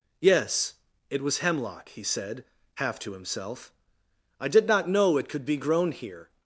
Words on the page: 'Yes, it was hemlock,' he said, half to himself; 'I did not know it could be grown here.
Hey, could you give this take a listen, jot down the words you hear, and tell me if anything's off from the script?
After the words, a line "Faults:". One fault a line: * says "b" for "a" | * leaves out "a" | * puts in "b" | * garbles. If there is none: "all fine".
'Yes, it was hemlock,' he said, half to himself; 'I did not know it could be grown here.
Faults:
all fine